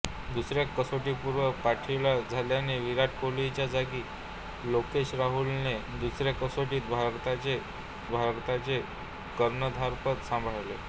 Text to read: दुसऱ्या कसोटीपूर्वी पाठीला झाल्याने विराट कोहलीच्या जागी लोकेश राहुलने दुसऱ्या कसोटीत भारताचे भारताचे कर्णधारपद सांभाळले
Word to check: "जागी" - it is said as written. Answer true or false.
true